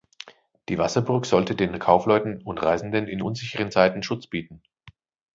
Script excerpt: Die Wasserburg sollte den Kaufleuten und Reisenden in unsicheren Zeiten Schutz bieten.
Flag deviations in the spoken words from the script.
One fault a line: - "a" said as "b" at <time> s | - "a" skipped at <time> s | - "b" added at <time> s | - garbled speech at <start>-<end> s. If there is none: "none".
none